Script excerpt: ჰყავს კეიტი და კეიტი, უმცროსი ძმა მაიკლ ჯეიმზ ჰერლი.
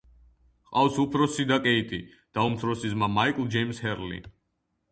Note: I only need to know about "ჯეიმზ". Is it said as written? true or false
true